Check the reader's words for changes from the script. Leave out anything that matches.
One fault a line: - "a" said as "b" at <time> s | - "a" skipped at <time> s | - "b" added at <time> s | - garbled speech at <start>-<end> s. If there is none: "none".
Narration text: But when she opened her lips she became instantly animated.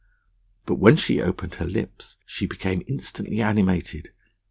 none